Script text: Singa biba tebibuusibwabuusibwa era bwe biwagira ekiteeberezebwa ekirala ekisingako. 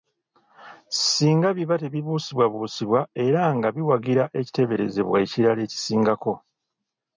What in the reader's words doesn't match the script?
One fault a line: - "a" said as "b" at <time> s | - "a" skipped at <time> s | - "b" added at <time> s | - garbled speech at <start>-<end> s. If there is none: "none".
- "bwe" said as "nga" at 3.6 s